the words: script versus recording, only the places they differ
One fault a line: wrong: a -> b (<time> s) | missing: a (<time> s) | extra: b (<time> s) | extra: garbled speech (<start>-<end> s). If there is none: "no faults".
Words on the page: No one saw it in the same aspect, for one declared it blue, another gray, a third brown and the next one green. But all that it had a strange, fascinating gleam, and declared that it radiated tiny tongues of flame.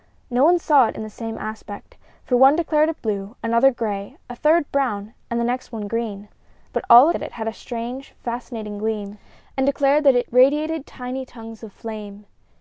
no faults